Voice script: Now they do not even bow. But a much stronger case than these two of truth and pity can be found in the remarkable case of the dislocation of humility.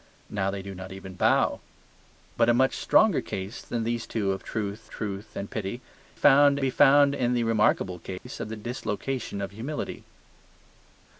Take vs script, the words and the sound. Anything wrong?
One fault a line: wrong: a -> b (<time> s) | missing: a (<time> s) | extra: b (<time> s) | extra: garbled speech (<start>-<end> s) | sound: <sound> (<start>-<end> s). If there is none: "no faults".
extra: truth (4.9 s)
wrong: can -> found (6.1 s)
sound: dropout (8.2-8.3 s)